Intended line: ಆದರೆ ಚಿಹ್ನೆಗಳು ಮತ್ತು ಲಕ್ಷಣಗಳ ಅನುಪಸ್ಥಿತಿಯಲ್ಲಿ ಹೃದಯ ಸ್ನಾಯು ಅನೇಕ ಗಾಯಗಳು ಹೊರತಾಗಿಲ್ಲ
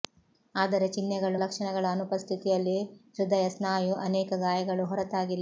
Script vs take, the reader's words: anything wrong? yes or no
yes